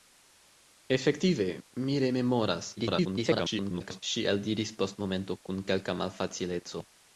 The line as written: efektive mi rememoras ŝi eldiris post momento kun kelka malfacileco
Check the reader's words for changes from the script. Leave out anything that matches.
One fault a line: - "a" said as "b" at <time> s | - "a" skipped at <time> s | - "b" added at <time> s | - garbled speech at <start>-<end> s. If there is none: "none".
- garbled speech at 2.8-4.0 s